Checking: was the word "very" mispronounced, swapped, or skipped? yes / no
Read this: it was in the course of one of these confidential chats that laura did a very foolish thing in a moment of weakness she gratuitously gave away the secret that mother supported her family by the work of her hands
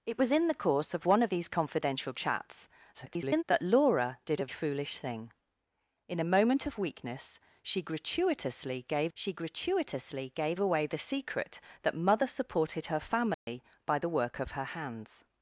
yes